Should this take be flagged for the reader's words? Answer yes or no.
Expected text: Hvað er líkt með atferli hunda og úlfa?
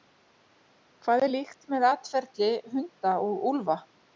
no